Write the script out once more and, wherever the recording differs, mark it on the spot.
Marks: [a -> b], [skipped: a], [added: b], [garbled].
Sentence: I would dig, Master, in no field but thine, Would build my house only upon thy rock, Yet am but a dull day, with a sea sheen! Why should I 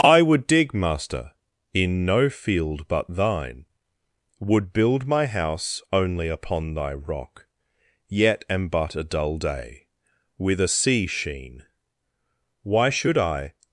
I would dig, Master, in no field but thine, Would build my house only upon thy rock, Yet am but a dull day, with a sea sheen! Why should I